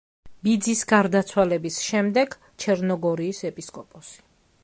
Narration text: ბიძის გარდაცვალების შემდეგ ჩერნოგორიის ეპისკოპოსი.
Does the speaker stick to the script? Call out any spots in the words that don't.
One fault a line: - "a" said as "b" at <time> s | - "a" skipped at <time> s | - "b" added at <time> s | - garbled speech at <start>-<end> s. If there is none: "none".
none